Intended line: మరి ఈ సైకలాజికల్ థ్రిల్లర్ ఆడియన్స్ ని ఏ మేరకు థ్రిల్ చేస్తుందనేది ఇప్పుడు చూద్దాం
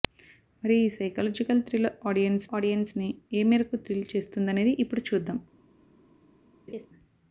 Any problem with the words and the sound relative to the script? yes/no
yes